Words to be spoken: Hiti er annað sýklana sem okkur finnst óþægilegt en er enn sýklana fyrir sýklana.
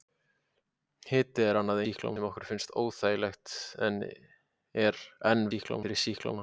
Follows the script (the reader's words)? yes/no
yes